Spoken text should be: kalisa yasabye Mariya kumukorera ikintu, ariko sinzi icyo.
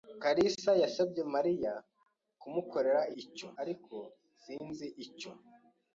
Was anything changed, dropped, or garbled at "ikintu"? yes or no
yes